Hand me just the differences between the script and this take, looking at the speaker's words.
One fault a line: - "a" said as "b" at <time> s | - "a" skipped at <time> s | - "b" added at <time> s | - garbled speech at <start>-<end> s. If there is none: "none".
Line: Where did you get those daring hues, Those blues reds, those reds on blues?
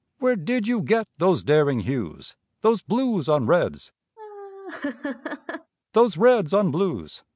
- "on" added at 3.3 s